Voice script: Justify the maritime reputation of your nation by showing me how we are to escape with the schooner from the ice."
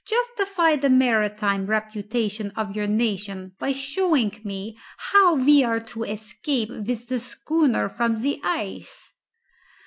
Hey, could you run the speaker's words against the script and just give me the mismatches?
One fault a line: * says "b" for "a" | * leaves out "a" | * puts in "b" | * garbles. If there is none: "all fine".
all fine